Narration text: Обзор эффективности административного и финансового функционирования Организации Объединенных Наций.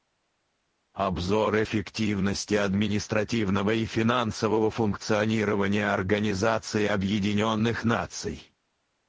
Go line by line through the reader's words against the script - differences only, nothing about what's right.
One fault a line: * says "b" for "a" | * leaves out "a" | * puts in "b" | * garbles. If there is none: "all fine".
all fine